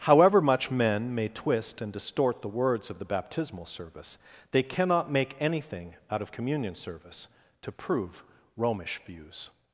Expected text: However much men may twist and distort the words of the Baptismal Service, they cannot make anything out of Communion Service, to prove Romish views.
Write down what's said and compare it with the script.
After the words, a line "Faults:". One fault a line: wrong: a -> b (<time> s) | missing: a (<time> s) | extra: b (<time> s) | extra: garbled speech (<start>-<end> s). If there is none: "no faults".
However much men may twist and distort the words of the Baptismal Service, they cannot make anything out of Communion Service, to prove Romish views.
Faults:
no faults